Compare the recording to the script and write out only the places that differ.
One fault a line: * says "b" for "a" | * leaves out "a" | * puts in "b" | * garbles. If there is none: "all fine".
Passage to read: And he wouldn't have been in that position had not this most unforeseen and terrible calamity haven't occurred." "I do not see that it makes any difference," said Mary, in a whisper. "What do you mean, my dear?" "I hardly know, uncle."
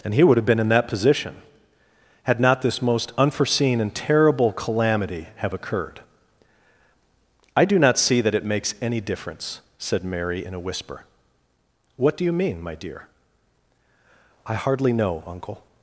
* says "would" for "wouldn't"
* says "have" for "haven't"